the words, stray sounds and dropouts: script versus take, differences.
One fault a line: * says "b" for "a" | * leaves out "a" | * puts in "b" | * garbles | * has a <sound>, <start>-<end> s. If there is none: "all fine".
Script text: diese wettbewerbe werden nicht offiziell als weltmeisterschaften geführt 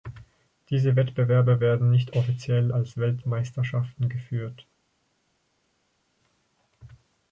all fine